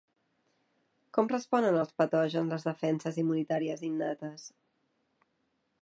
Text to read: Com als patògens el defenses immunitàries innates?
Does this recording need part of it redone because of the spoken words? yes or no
yes